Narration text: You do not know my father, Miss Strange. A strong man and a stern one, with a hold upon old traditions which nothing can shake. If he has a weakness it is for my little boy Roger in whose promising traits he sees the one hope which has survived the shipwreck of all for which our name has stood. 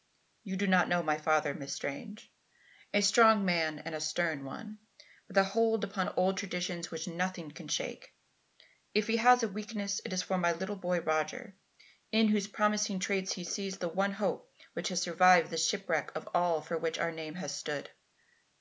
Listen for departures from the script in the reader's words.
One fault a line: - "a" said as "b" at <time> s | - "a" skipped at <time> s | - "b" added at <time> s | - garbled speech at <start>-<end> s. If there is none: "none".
none